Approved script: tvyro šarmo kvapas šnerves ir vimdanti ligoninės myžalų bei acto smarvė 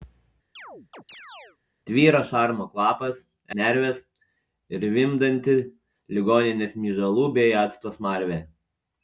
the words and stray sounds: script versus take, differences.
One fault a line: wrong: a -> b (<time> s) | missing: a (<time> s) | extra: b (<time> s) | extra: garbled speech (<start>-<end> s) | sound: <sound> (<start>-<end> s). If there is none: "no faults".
sound: chirp (0.6-1.6 s)